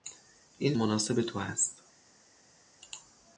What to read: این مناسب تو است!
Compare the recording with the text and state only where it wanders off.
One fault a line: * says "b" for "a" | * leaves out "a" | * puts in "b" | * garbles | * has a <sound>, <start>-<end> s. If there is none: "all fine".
all fine